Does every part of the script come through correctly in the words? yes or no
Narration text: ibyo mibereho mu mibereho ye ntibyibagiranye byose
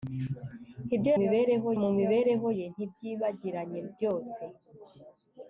yes